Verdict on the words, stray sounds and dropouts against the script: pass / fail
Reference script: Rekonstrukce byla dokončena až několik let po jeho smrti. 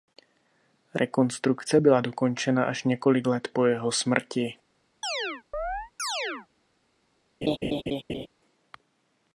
fail